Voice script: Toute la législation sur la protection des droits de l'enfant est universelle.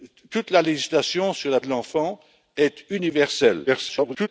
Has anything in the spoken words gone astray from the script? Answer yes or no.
yes